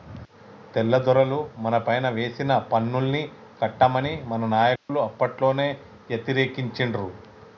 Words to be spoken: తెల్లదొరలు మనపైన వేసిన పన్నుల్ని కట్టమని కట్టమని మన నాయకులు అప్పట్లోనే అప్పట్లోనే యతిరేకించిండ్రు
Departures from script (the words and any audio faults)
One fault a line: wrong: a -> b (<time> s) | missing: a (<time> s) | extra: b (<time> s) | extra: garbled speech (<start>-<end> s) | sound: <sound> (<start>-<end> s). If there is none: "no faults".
missing: కట్టమని (4.1 s)
sound: dropout (4.8-4.9 s)
missing: అప్పట్లోనే (5.7 s)